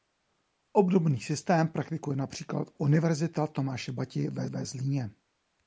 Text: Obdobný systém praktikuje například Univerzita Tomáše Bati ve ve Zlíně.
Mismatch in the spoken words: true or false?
false